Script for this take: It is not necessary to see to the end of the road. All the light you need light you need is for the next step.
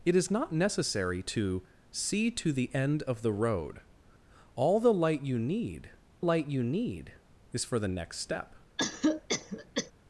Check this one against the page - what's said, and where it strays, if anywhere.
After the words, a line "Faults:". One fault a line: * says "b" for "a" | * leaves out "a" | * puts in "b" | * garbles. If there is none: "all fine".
It is not necessary to see to the end of the road. All the light you need light you need is for the next step.
Faults:
all fine